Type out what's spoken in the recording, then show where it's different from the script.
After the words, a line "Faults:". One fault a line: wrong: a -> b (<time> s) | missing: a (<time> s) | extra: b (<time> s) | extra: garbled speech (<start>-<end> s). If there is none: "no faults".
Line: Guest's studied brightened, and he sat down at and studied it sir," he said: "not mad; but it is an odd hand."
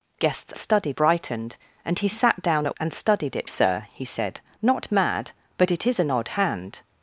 Guest's studied brightened, and he sat down at and studied it sir," he said: "not mad; but it is an odd hand."
Faults:
no faults